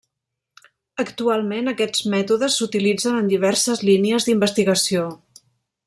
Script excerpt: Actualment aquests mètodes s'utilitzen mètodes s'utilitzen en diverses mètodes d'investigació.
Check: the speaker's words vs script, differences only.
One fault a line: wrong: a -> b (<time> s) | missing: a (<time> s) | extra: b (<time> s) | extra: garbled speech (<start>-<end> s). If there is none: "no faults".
missing: mètodes s'utilitzen (3.2 s)
wrong: mètodes -> línies (3.9 s)